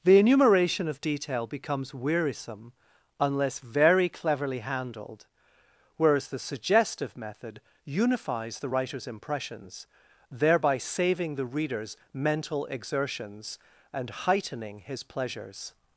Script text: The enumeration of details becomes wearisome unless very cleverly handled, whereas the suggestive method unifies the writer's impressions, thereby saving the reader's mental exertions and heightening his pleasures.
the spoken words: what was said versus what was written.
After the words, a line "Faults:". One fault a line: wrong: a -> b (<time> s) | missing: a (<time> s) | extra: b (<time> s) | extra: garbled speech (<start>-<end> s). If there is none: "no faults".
The enumeration of detail becomes wearisome unless very cleverly handled, whereas the suggestive method unifies the writer's impressions, thereby saving the reader's mental exertions and heightening his pleasures.
Faults:
wrong: details -> detail (1.0 s)